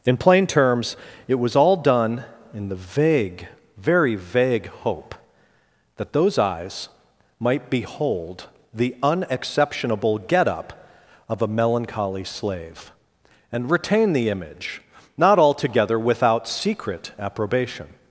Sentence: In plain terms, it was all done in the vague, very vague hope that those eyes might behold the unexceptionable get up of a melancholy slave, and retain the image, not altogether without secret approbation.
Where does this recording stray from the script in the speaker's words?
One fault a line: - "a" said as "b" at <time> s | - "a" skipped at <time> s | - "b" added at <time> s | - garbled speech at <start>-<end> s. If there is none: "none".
none